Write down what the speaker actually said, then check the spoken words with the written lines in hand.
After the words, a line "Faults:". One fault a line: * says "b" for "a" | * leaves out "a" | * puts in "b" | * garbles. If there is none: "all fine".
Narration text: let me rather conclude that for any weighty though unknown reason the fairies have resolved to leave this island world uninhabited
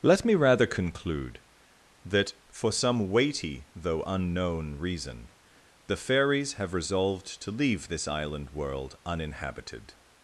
let me rather conclude that for some weighty though unknown reason the fairies have resolved to leave this island world uninhabited
Faults:
* says "some" for "any"